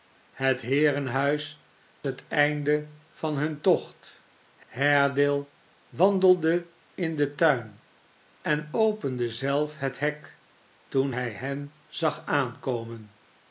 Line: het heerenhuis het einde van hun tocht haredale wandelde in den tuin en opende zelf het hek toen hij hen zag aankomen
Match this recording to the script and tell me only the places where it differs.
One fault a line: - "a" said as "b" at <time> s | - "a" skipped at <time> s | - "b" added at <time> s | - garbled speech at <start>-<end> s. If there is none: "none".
none